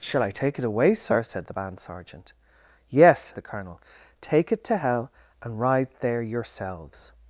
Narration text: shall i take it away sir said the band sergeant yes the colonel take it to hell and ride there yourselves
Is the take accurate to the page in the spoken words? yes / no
yes